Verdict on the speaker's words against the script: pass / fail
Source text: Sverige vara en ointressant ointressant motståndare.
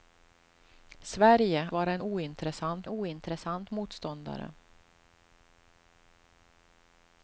pass